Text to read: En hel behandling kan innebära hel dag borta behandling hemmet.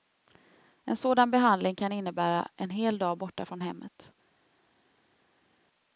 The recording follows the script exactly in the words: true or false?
false